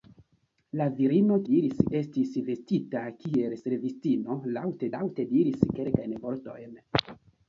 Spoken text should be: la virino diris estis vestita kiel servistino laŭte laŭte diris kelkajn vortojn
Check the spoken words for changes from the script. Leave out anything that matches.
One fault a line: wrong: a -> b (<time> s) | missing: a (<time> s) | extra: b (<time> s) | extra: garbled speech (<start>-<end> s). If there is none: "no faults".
no faults